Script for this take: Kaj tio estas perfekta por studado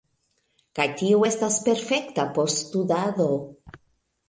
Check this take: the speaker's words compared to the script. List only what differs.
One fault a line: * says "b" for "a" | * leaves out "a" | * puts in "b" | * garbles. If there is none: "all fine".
all fine